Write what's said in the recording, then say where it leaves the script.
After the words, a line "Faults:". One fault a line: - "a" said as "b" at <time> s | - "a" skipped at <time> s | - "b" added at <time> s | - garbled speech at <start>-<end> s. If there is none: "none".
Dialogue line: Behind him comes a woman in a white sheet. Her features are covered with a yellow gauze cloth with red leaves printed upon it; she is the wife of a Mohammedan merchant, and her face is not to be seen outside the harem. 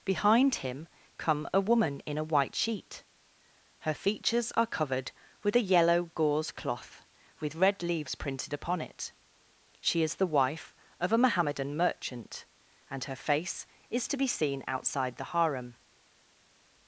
Behind him come a woman in a white sheet. Her features are covered with a yellow gauze cloth with red leaves printed upon it; she is the wife of a Mohammedan merchant, and her face is to be seen outside the harem.
Faults:
- "comes" said as "come" at 1.2 s
- "not" skipped at 14.1 s